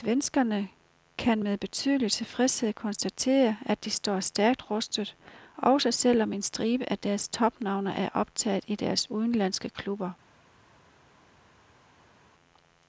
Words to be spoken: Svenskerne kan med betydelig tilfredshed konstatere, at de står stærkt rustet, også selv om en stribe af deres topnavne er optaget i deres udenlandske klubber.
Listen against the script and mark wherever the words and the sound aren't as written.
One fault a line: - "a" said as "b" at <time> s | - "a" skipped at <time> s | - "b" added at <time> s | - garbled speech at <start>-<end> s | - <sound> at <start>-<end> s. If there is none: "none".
none